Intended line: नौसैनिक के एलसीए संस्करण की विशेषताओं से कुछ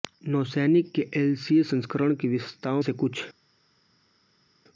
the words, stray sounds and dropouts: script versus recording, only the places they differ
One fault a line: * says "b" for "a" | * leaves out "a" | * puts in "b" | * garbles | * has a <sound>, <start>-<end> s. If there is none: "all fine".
all fine